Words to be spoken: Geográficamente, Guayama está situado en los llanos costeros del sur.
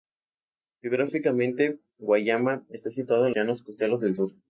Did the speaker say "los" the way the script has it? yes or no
no